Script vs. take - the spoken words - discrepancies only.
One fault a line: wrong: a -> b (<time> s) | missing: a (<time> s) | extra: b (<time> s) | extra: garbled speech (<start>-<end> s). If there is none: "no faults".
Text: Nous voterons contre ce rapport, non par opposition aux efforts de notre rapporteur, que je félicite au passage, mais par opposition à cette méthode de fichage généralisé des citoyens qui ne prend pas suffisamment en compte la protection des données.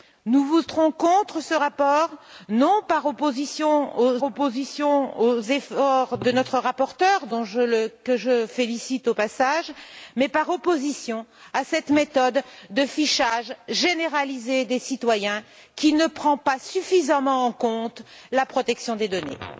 extra: opposition aux (4.2 s)